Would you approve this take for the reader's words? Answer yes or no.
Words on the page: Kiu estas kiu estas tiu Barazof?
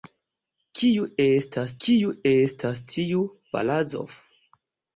yes